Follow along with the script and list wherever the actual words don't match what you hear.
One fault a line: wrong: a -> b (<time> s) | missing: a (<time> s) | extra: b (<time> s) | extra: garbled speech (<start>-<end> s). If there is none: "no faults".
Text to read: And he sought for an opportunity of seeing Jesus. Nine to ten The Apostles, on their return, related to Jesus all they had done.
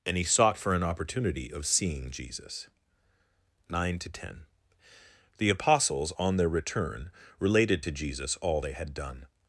no faults